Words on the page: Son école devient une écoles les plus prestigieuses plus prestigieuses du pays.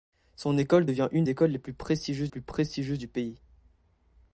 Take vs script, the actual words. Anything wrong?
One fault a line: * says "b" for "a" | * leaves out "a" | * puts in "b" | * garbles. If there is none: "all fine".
all fine